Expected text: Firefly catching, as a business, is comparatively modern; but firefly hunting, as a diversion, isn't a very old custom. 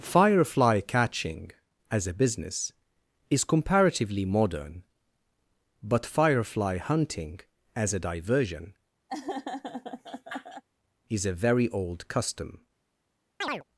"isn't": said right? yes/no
no